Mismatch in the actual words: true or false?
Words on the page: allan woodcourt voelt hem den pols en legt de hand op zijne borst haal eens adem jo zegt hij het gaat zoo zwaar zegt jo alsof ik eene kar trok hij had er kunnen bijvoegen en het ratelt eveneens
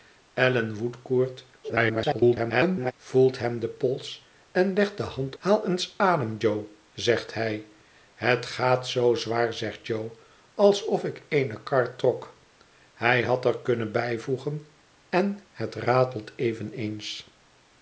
true